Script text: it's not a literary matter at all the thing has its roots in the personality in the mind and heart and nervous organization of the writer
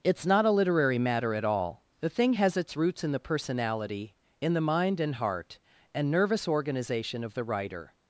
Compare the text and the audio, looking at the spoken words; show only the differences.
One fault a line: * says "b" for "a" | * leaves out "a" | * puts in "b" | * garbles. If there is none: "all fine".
all fine